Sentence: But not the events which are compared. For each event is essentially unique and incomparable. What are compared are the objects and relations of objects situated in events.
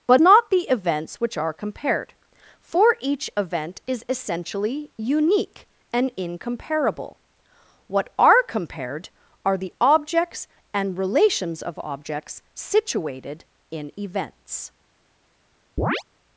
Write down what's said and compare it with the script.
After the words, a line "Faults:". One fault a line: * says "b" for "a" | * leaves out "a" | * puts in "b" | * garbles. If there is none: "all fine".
But not the events which are compared. For each event is essentially unique and incomparable. What are compared are the objects and relations of objects situated in events.
Faults:
all fine